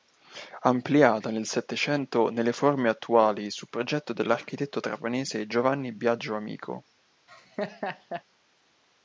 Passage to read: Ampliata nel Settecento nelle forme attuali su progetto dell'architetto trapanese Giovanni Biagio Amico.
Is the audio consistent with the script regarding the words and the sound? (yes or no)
no